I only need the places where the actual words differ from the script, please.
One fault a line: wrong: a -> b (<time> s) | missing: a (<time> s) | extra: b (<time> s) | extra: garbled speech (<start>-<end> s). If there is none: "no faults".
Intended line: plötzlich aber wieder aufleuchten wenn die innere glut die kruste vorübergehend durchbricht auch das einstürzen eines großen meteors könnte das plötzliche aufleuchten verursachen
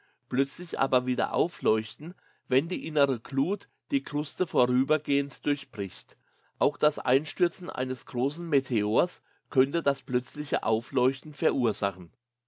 no faults